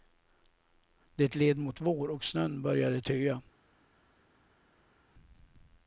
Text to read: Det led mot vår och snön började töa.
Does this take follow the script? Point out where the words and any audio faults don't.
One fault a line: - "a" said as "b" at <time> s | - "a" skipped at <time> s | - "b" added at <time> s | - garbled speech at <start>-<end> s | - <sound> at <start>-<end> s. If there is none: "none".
none